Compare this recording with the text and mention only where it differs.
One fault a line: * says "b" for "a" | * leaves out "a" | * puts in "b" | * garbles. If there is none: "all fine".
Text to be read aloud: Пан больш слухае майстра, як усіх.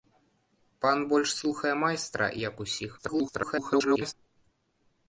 * garbles